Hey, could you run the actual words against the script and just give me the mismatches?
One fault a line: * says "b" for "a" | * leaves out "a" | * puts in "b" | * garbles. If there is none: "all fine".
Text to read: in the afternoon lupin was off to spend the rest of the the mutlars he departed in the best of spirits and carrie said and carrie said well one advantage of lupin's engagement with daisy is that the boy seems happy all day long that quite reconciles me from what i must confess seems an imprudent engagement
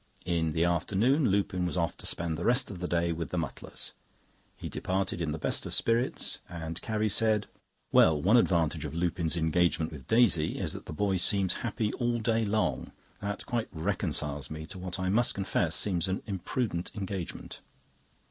* puts in "day with"
* leaves out "and carrie said"
* says "to" for "from"